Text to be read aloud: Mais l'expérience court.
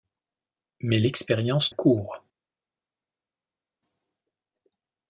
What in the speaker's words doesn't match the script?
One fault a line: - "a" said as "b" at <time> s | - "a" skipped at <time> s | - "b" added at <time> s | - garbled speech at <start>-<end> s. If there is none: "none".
none